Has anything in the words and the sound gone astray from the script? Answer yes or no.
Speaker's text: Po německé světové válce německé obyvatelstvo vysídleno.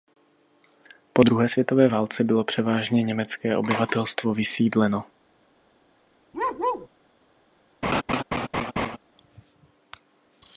yes